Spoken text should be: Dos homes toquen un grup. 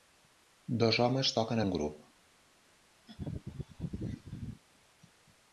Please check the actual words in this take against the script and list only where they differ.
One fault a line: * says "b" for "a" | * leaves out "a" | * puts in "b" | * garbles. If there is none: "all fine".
all fine